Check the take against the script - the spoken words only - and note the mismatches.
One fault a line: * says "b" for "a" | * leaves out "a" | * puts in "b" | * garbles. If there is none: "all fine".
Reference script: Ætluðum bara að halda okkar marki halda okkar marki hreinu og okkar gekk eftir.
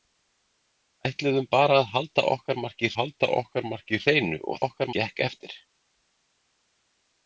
all fine